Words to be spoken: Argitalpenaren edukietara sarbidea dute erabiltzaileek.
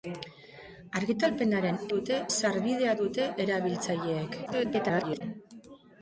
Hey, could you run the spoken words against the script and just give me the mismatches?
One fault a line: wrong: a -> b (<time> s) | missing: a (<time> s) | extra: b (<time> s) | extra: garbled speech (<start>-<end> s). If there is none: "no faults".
wrong: edukietara -> dute (1.9 s)
extra: garbled speech (4.5-5.2 s)